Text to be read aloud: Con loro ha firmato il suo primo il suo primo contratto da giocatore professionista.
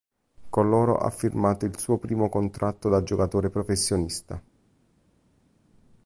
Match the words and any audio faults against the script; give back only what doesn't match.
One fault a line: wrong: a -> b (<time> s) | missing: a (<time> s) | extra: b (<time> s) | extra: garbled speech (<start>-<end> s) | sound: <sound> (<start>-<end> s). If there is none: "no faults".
missing: il suo primo (2.3 s)